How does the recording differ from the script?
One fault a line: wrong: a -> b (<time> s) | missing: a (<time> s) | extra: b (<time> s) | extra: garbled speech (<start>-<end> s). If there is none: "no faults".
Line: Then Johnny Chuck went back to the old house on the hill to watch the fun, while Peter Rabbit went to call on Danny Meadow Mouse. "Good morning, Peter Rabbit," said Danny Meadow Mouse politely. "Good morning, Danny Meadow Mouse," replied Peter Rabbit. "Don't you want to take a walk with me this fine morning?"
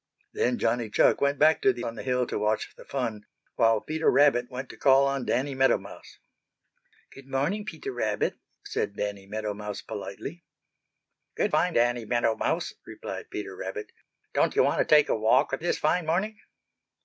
missing: old house (1.9 s)
wrong: morning -> fine (11.5 s)
missing: me (15.6 s)